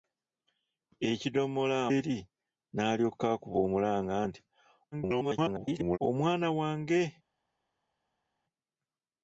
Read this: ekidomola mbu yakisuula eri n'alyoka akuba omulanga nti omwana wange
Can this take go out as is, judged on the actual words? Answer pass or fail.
fail